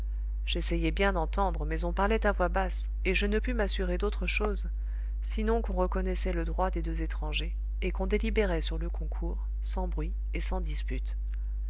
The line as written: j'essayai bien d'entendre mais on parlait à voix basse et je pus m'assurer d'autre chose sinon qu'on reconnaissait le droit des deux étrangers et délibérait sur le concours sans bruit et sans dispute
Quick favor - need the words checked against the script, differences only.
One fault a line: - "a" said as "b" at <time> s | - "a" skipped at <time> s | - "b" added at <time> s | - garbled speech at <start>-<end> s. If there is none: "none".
- "ne" added at 3.3 s
- "qu'on" added at 7.9 s